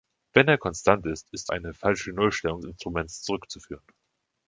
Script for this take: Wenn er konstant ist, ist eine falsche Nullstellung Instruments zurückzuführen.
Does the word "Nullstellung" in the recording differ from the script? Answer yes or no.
no